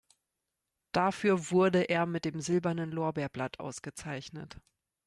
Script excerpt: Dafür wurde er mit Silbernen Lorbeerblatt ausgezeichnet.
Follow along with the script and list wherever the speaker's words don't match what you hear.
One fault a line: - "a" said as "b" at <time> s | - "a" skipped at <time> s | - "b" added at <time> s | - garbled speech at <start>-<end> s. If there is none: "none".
- "dem" added at 2.2 s